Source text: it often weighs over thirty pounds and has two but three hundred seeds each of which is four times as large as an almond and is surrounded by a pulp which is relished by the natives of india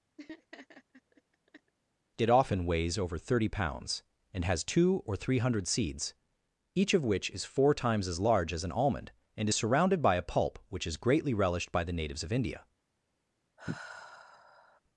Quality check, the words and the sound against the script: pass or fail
fail